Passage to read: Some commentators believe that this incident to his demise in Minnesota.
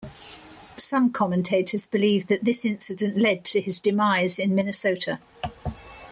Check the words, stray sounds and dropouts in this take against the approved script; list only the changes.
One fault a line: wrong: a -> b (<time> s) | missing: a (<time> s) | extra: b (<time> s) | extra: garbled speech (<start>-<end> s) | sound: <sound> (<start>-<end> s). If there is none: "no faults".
extra: led (3.2 s)